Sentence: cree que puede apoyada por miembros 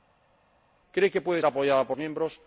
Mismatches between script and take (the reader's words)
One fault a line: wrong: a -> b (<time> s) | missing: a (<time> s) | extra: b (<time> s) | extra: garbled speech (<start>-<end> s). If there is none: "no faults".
no faults